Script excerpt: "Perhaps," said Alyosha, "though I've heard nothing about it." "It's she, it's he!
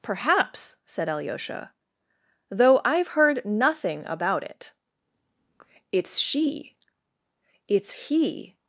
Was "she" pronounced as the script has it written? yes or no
yes